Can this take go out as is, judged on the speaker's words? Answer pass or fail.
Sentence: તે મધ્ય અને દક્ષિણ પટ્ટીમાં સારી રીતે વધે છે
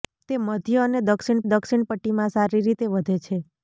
fail